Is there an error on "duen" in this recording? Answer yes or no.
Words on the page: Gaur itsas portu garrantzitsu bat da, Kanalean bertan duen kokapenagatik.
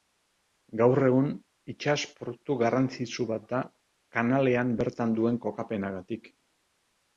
no